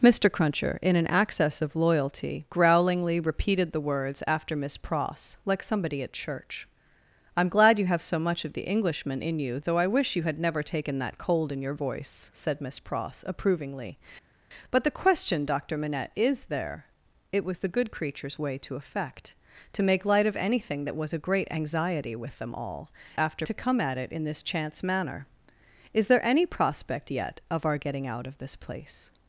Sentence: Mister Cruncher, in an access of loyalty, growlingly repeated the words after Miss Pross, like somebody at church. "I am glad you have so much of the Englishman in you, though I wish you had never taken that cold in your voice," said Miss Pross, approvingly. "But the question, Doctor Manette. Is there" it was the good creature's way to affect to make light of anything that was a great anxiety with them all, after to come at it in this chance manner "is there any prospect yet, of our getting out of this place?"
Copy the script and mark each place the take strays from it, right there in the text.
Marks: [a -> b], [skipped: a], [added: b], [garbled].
Mister Cruncher, in an access of loyalty, growlingly repeated the words after Miss Pross, like somebody at church. "I am glad you have so much of the Englishman in you, though I wish you had never taken that cold in your voice," said Miss Pross, approvingly. "But the question, Doctor Manette. Is there" it was the good creature's way to affect to make light of anything that was a great anxiety with them all, after to come at it in this chance manner "is there any prospect yet, of our getting out of this place?"